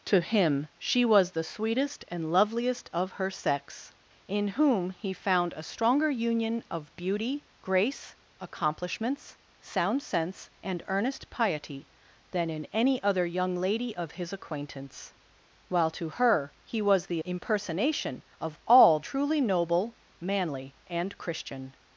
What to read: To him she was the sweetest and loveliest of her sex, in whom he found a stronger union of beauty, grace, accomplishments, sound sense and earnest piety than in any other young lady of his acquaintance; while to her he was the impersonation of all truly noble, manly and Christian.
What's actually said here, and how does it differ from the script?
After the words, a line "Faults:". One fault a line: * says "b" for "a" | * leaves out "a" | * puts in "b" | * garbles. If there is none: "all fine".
To him she was the sweetest and loveliest of her sex, in whom he found a stronger union of beauty, grace, accomplishments, sound sense and earnest piety than in any other young lady of his acquaintance; while to her he was the impersonation of all truly noble, manly and Christian.
Faults:
all fine